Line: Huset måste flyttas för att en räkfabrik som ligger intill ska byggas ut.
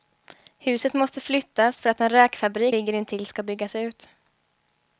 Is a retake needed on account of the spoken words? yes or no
yes